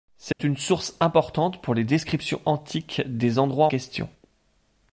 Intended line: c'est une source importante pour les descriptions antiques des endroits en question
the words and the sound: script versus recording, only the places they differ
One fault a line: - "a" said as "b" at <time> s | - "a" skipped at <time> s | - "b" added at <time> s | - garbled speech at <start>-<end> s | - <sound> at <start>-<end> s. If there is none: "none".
- dropout at 0.3-0.4 s
- "en" skipped at 3.7 s